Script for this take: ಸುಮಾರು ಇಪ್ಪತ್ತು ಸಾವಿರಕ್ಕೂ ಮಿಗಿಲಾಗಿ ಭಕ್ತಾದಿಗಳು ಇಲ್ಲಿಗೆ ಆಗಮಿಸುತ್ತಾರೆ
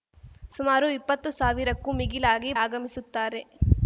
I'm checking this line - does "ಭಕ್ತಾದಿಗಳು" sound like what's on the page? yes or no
no